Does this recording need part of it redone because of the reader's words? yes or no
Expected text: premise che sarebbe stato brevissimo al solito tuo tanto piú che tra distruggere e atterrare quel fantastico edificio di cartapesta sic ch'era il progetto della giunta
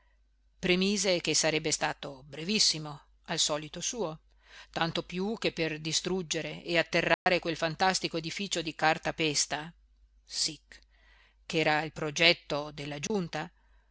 yes